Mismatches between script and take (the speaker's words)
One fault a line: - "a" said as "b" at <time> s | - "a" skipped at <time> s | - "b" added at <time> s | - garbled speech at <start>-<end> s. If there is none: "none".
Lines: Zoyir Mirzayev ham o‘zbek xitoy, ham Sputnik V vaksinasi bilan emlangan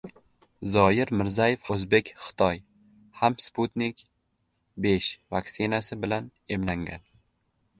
- "ham" skipped at 1.7 s